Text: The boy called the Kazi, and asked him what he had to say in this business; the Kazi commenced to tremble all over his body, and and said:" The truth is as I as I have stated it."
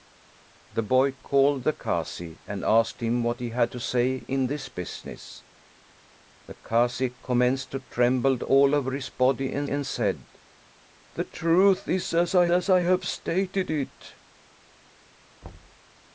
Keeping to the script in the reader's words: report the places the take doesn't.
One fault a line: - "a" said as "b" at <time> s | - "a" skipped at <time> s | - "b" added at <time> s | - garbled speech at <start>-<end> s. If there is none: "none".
none